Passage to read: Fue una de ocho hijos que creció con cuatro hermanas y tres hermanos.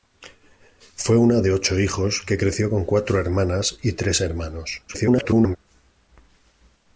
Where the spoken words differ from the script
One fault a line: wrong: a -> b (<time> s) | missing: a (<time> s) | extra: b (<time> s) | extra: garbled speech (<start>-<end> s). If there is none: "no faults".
extra: garbled speech (4.9-5.6 s)